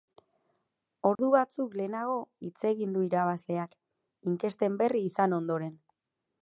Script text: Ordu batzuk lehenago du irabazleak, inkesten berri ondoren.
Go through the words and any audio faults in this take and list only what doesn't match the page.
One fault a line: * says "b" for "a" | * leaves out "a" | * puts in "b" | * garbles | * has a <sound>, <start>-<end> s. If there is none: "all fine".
* has a dropout, 1.2-1.2 s
* puts in "hitz egin"
* puts in "izan"